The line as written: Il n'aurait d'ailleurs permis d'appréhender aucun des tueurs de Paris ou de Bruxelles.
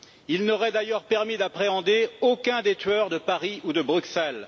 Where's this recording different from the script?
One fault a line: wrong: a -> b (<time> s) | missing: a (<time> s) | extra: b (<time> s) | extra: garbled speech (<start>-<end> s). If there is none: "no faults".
no faults